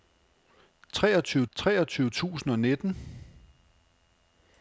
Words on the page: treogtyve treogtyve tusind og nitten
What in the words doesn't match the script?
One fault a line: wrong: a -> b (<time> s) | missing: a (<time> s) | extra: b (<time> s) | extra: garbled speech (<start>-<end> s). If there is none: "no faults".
no faults